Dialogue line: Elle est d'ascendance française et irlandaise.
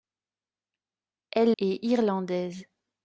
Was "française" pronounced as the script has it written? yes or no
no